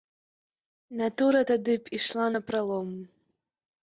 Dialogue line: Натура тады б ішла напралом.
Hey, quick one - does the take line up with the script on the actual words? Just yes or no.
yes